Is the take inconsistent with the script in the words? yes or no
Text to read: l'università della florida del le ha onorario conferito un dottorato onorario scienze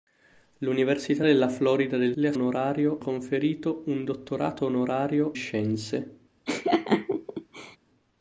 no